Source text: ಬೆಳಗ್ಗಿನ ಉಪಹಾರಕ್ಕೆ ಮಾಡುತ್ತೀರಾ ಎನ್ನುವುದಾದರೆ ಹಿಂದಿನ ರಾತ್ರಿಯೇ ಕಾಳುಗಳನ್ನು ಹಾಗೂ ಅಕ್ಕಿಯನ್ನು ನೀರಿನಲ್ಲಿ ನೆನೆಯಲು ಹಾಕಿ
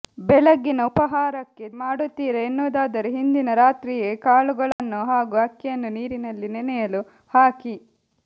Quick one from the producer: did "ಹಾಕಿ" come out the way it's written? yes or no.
yes